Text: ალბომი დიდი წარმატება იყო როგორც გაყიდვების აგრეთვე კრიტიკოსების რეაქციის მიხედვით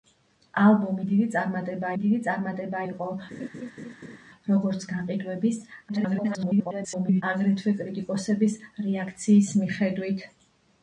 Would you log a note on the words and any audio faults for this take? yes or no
yes